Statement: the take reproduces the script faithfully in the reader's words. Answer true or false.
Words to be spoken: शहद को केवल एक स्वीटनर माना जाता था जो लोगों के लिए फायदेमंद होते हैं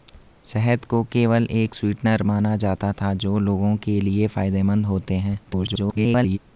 false